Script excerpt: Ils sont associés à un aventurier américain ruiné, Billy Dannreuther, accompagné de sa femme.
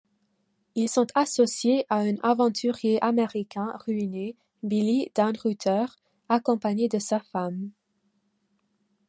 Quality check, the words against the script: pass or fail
pass